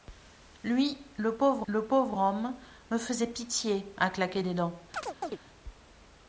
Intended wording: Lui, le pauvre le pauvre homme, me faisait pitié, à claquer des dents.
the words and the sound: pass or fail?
fail